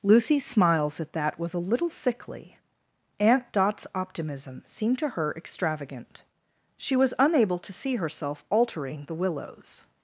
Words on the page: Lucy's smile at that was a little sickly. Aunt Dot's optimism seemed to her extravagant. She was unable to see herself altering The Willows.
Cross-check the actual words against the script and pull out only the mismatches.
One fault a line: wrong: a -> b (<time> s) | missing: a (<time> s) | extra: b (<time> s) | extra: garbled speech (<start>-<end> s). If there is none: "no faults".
wrong: smile -> smiles (0.4 s)